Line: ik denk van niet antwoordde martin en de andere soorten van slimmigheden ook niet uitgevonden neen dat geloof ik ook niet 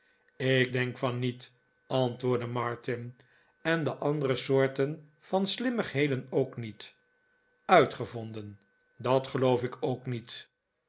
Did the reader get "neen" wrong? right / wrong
wrong